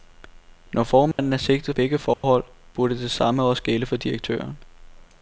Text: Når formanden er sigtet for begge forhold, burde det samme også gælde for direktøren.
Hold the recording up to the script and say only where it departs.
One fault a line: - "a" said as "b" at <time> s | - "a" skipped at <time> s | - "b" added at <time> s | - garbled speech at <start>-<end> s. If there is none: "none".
- "for" skipped at 1.8 s